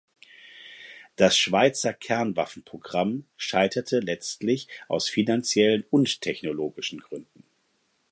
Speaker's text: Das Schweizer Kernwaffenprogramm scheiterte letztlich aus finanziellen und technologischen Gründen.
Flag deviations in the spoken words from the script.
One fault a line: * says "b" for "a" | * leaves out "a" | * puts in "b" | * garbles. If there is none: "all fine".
all fine